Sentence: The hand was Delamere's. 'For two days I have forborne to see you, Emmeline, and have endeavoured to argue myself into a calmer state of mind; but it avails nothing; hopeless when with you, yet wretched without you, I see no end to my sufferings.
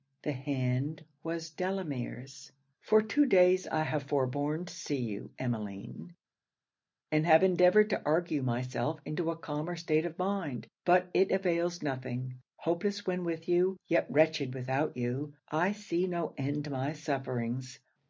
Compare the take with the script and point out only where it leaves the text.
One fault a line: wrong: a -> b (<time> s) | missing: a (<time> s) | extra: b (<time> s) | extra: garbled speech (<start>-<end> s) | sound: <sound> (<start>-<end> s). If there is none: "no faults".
no faults